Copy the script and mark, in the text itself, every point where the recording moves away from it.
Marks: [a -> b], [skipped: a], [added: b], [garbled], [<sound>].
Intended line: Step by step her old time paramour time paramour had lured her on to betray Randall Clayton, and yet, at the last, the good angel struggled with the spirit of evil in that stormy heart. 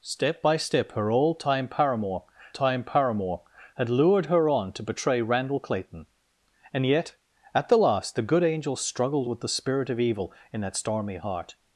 Step by step her old time paramour time paramour had lured her on to betray Randall Clayton, and yet, at the last, the good angel struggled with the spirit of evil in that stormy heart.